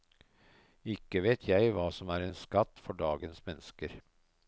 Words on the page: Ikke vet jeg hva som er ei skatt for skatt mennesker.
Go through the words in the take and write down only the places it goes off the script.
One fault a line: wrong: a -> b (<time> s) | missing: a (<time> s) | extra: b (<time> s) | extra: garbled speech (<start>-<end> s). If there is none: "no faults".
wrong: ei -> en (2.3 s)
wrong: skatt -> dagens (3.0 s)